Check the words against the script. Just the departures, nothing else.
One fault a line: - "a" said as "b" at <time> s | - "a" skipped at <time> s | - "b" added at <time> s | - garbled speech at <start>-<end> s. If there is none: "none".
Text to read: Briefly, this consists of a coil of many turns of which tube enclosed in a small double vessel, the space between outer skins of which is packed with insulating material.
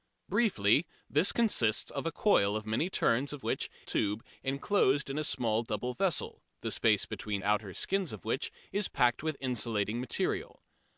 none